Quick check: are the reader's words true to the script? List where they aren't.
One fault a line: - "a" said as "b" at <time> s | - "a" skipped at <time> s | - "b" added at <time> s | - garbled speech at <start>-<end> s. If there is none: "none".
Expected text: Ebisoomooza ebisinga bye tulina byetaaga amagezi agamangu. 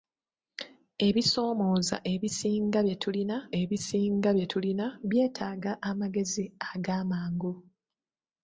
- "ebisinga bye tulina" added at 3.6 s